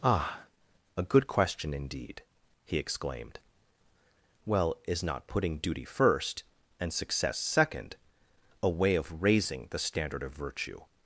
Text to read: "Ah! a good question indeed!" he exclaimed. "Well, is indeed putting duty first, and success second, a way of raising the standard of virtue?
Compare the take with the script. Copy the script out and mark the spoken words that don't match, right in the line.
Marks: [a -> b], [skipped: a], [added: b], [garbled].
"Ah! a good question indeed!" he exclaimed. "Well, is [indeed -> not] putting duty first, and success second, a way of raising the standard of virtue?